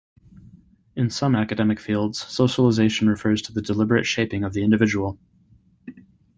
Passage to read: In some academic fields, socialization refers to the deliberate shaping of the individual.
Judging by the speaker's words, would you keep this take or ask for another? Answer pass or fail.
pass